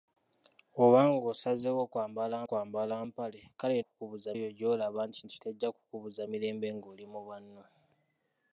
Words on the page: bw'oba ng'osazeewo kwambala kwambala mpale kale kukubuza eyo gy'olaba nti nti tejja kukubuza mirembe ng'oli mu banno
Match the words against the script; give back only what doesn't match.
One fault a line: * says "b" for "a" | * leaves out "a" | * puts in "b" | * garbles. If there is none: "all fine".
all fine